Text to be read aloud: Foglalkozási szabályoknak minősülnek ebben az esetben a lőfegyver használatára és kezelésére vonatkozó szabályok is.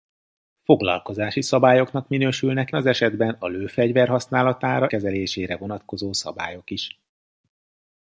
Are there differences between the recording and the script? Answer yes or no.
yes